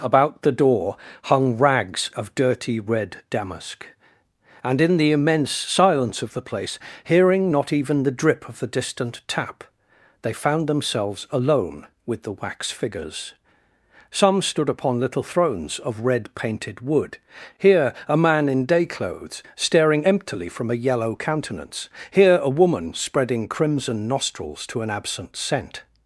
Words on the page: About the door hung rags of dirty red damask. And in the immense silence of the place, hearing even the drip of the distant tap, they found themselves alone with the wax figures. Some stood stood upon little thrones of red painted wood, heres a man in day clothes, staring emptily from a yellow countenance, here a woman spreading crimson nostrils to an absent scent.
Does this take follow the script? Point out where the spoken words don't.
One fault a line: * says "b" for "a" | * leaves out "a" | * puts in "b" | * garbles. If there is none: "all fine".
* puts in "not"
* leaves out "stood"
* says "here" for "heres"